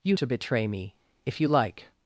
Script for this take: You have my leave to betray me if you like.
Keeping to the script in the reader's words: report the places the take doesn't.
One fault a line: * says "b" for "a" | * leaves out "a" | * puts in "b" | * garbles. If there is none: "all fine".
* leaves out "have my leave"